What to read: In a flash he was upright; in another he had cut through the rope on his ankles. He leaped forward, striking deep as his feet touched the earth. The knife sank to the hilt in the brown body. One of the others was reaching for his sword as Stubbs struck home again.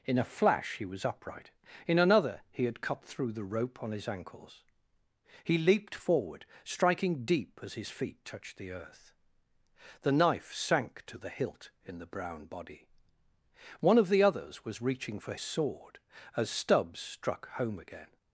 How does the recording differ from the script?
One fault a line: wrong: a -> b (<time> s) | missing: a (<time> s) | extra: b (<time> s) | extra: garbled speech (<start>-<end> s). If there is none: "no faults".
missing: his (15.3 s)